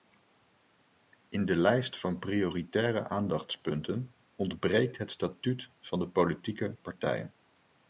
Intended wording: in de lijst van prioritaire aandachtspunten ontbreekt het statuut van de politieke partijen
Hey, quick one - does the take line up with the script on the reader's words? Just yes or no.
yes